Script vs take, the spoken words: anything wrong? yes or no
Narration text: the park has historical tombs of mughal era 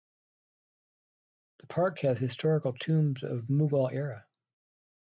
no